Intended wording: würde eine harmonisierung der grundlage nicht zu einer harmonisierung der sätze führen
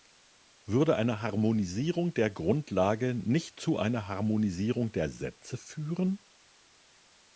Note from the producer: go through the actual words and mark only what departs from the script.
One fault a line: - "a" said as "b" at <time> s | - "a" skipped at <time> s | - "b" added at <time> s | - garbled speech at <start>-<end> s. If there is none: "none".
none